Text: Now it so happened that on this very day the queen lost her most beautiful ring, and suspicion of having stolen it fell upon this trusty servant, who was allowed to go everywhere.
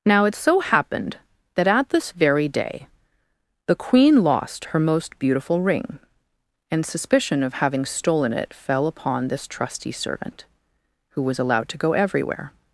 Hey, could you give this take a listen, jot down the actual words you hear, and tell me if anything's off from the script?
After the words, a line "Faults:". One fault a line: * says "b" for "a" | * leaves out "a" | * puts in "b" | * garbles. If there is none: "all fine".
Now it so happened that at this very day the queen lost her most beautiful ring, and suspicion of having stolen it fell upon this trusty servant, who was allowed to go everywhere.
Faults:
* says "at" for "on"